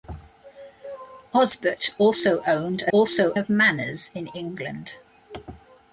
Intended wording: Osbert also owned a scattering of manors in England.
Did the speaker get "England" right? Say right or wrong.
right